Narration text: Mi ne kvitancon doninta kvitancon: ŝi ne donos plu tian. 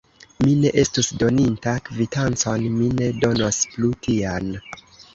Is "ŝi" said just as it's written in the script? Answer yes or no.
no